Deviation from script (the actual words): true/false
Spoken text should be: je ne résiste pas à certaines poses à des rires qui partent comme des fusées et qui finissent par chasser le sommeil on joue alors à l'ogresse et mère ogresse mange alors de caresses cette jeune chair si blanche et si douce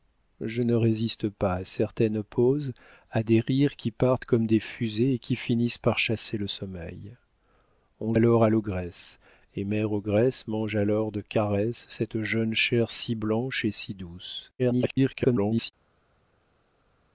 true